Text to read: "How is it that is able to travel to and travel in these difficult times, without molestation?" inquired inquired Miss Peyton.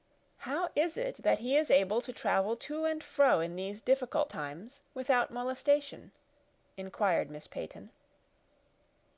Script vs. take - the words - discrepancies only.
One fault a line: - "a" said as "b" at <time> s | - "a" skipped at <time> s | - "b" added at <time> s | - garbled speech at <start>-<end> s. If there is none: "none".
- "he" added at 1.4 s
- "travel" said as "fro" at 3.0 s
- "inquired" skipped at 7.3 s